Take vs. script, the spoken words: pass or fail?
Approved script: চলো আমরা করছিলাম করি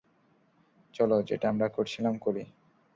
fail